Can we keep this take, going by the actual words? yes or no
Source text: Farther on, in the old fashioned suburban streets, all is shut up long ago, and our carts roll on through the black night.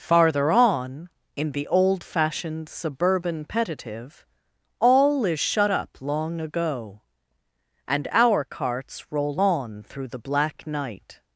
no